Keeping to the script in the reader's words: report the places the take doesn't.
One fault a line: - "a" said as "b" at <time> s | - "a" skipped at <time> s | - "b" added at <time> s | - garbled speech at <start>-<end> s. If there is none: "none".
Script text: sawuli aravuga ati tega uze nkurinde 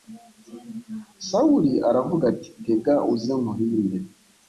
none